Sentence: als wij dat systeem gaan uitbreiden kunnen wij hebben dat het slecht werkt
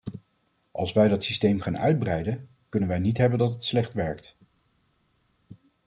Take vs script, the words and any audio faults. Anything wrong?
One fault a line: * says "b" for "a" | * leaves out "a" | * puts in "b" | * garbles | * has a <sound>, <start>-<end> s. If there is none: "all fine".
* puts in "niet"